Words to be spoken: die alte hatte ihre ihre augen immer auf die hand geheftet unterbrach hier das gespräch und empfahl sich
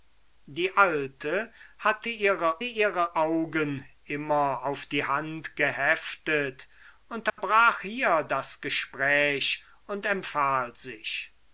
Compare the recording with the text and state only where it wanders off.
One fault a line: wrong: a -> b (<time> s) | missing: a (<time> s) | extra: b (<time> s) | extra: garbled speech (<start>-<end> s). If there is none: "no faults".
no faults